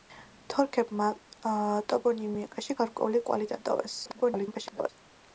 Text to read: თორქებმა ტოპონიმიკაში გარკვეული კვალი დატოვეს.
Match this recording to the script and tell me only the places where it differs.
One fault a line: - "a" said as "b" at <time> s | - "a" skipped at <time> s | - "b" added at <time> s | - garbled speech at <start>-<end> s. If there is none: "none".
- garbled speech at 4.0-4.9 s